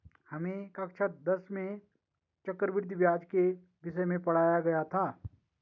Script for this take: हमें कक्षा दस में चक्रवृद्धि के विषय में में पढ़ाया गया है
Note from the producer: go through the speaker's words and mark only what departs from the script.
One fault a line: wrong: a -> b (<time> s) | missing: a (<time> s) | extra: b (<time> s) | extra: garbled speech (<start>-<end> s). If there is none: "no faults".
extra: ब्याज (3.0 s)
missing: में (4.2 s)
wrong: है -> था (4.9 s)